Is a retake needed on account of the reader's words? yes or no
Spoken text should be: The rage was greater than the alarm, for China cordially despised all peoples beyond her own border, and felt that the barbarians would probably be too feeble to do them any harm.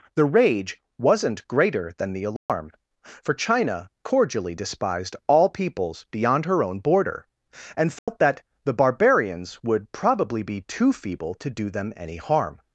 yes